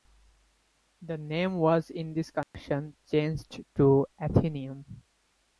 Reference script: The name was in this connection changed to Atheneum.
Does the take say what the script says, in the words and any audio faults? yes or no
no